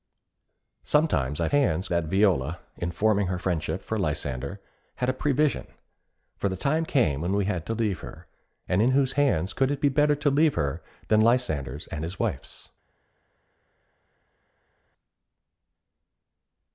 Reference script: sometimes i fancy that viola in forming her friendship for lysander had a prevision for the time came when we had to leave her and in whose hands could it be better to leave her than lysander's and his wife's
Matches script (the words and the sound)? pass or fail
fail